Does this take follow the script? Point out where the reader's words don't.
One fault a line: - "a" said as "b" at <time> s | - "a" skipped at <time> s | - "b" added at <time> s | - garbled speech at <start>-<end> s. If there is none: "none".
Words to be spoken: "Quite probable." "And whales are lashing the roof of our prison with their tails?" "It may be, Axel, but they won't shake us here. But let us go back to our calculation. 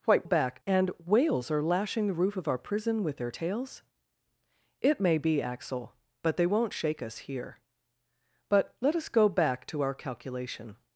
- "probable" said as "back" at 0.2 s